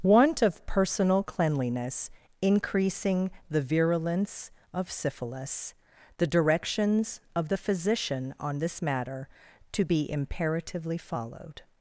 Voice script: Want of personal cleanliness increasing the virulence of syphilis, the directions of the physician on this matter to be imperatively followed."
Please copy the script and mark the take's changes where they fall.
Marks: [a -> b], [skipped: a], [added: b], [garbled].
Want of personal cleanliness increasing the virulence of syphilis, the directions of the physician on this matter to be imperatively followed."